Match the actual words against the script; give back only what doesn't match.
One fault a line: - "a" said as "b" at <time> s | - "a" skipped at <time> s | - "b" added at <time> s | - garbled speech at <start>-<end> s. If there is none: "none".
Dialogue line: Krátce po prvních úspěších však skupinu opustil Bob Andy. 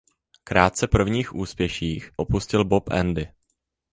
- "po" skipped at 0.9 s
- "však skupinu" skipped at 2.1 s